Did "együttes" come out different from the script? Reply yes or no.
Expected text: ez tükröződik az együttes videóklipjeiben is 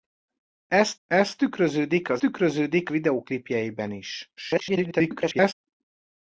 yes